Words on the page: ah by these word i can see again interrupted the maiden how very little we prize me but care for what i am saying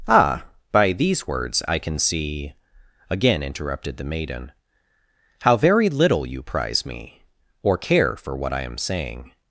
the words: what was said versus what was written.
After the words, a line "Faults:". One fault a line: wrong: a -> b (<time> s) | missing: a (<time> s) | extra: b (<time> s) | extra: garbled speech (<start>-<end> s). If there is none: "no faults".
ah by these words i can see again interrupted the maiden how very little you prize me or care for what i am saying
Faults:
wrong: word -> words (1.3 s)
wrong: we -> you (6.2 s)
wrong: but -> or (7.6 s)